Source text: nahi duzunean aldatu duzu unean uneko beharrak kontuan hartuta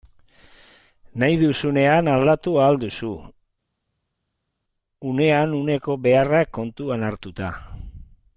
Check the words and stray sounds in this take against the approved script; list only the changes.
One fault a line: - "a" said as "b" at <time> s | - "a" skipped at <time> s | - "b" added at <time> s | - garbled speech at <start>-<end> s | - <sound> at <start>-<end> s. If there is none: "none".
- "ahal" added at 2.6 s